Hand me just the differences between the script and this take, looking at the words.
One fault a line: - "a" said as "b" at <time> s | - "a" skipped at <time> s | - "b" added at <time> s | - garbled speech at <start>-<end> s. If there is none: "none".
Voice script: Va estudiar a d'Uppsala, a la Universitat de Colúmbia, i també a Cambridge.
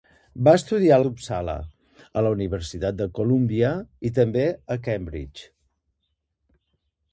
none